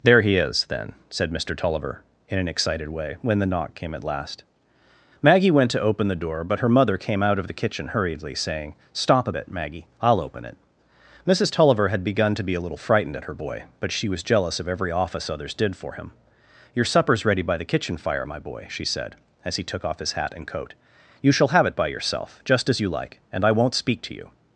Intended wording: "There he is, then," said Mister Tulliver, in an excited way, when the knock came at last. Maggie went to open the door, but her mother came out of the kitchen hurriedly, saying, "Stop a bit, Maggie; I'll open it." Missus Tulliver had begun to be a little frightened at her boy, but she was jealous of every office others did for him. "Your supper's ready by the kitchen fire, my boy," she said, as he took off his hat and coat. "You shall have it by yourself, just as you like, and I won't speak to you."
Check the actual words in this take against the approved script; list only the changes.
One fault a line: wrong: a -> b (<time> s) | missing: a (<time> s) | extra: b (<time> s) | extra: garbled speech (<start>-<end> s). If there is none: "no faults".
no faults